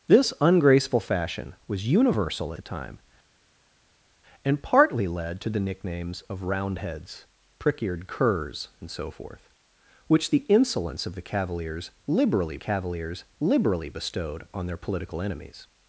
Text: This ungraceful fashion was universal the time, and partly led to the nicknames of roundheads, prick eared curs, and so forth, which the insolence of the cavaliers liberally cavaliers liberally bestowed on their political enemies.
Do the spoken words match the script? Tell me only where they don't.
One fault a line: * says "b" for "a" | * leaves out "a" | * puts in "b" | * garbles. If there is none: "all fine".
all fine